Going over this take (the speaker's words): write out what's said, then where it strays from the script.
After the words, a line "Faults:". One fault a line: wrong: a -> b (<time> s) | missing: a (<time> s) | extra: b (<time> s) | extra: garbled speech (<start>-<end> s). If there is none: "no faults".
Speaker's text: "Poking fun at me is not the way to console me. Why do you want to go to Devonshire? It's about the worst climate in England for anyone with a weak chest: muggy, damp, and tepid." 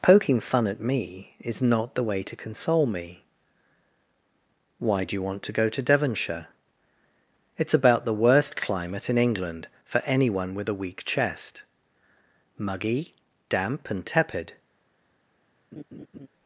"Poking fun at me is not the way to console me. Why do you want to go to Devonshire? It's about the worst climate in England for anyone with a weak chest: muggy, damp, and tepid."
Faults:
no faults